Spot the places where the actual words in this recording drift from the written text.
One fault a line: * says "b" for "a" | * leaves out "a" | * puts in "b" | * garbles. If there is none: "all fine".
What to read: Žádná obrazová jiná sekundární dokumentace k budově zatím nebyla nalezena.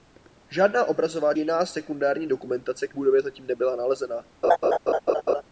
all fine